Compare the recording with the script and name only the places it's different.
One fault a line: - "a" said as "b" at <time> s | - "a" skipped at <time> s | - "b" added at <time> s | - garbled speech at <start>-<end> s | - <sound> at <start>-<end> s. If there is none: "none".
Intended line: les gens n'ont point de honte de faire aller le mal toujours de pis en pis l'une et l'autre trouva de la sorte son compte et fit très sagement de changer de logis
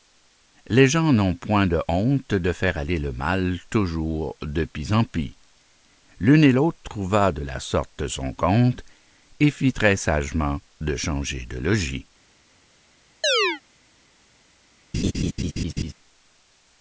- chirp at 13.2-13.6 s
- laugh at 14.9-15.9 s